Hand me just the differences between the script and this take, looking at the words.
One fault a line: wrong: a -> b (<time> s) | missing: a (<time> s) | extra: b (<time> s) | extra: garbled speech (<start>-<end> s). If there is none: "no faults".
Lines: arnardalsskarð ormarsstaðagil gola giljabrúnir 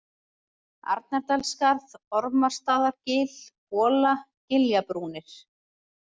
no faults